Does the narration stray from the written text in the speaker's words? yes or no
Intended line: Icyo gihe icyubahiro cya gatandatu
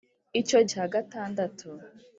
yes